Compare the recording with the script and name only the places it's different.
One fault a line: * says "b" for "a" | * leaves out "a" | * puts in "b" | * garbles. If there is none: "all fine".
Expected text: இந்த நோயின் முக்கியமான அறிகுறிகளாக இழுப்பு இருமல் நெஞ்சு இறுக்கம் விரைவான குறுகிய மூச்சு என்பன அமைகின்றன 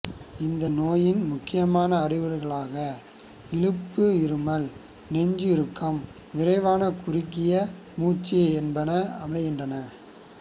all fine